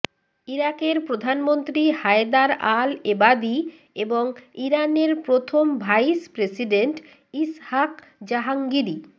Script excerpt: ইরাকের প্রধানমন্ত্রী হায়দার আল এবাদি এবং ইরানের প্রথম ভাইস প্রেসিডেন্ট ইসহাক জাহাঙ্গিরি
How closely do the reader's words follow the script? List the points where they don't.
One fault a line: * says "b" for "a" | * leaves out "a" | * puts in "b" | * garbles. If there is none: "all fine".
all fine